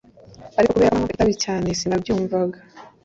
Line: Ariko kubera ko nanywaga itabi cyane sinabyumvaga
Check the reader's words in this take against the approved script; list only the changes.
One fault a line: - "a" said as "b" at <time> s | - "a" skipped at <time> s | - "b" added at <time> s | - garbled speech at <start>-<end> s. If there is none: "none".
none